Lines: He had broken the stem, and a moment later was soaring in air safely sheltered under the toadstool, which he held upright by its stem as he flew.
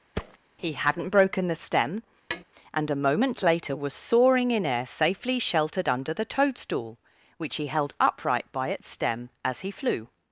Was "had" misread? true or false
true